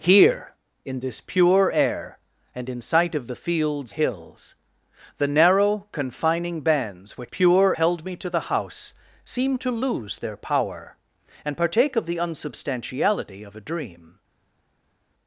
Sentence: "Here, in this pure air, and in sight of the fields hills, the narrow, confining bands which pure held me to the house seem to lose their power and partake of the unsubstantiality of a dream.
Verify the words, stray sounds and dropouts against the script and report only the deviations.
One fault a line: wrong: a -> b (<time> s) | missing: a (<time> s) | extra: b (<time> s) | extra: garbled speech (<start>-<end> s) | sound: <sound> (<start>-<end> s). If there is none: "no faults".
no faults